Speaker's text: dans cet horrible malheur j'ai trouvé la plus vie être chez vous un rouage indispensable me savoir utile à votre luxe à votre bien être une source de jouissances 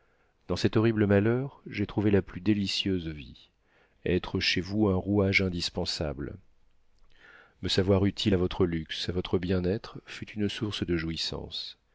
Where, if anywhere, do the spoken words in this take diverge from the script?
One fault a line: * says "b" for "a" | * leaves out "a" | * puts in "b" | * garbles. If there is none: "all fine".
* puts in "délicieuse"
* puts in "fut"